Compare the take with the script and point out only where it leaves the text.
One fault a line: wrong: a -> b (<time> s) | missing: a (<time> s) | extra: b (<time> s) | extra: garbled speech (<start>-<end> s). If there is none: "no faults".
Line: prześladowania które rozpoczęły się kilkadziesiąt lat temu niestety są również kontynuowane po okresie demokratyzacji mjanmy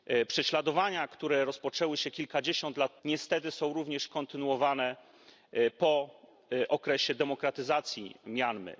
missing: temu (3.0 s)